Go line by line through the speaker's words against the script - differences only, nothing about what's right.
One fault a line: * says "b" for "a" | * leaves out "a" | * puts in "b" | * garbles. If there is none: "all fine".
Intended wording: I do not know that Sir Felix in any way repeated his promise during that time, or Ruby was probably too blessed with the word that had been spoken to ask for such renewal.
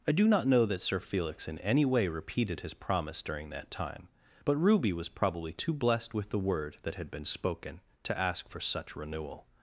* says "but" for "or"